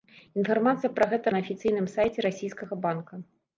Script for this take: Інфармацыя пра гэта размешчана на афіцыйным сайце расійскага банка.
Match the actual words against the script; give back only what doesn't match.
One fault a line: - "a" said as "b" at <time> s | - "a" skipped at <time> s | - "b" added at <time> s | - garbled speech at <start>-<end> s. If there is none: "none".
- "размешчана" skipped at 1.3 s